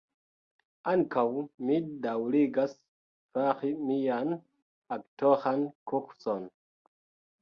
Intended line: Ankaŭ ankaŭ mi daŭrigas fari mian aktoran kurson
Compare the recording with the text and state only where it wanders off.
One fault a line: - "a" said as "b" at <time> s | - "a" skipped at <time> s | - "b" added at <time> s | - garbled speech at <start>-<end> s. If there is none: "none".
- "ankaŭ" skipped at 1.2 s